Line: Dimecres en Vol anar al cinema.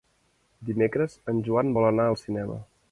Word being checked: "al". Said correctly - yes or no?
yes